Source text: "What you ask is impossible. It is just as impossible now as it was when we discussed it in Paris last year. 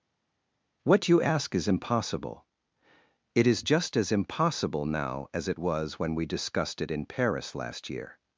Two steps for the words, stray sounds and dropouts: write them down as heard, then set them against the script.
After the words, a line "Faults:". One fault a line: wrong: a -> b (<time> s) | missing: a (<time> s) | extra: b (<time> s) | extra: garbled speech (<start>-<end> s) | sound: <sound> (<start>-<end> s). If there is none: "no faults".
"What you ask is impossible. It is just as impossible now as it was when we discussed it in Paris last year.
Faults:
no faults